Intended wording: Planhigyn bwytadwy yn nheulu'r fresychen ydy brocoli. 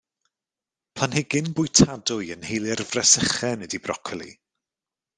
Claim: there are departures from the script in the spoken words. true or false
false